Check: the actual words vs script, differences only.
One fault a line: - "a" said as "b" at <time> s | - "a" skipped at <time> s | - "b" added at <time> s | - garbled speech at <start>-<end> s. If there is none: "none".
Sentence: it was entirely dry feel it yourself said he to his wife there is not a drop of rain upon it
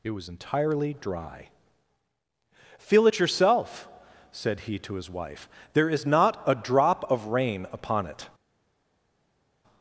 none